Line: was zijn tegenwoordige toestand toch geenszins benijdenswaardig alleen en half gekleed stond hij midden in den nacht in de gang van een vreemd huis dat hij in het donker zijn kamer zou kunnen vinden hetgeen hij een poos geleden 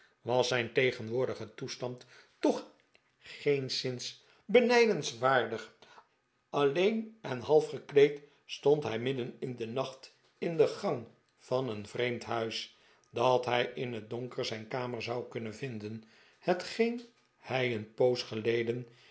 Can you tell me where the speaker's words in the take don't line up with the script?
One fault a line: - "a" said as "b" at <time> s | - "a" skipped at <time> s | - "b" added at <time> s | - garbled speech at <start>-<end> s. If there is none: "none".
none